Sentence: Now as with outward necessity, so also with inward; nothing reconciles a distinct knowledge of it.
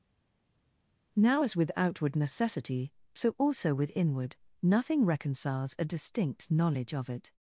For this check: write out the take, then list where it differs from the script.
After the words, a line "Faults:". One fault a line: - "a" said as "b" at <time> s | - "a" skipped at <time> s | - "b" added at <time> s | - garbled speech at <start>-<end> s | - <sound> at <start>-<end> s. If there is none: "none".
Now as with outward necessity, so also with inward; nothing reconciles a distinct knowledge of it.
Faults:
none